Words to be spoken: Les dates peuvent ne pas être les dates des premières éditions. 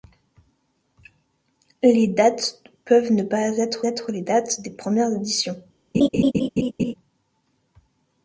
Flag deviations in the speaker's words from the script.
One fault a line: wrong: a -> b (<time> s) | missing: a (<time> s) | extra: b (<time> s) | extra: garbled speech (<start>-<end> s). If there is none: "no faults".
extra: être (3.8 s)